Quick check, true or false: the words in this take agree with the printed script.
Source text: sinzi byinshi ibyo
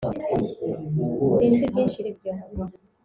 true